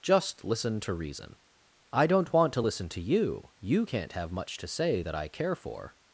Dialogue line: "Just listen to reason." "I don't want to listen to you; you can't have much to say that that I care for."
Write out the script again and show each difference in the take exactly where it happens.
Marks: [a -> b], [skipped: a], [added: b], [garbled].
"Just listen to reason." "I don't want to listen to you; you can't have much to say that [skipped: that] I care for."